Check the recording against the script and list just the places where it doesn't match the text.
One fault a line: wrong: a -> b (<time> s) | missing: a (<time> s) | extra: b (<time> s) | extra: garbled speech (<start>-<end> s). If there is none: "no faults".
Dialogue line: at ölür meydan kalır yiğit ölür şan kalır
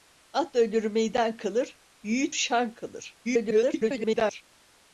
missing: ölür (2.4 s)
extra: garbled speech (3.2-4.4 s)